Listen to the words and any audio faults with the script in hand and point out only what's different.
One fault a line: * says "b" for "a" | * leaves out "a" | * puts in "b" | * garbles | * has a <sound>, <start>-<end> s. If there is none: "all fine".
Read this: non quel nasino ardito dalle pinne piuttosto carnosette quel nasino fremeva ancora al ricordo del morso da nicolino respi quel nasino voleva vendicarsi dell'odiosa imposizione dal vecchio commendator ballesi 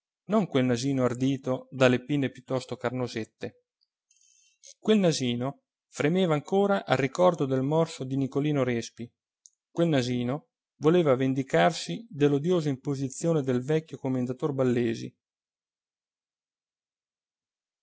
* says "di" for "da"
* says "del" for "dal"